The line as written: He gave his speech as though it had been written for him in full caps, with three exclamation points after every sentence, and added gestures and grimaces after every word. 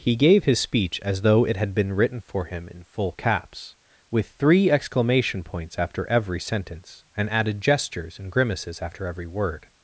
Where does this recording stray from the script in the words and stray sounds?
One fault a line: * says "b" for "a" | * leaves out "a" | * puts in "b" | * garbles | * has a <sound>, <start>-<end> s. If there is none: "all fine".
all fine